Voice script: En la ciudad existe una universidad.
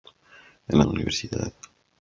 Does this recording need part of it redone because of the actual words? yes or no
yes